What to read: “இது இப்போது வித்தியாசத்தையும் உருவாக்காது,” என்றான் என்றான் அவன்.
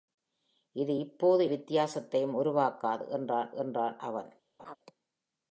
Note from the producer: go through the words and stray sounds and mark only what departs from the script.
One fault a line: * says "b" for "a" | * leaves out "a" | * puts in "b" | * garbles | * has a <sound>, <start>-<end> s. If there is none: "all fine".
* has a laugh, 4.6-4.8 s